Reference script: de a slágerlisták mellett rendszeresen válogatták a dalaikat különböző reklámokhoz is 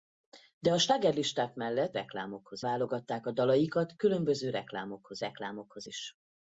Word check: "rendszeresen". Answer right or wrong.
wrong